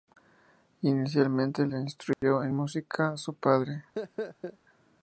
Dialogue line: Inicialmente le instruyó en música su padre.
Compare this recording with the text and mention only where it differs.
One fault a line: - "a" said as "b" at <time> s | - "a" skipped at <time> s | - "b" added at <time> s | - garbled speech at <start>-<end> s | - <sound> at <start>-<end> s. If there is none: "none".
- dropout at 2.1-2.2 s
- laugh at 4.0-4.6 s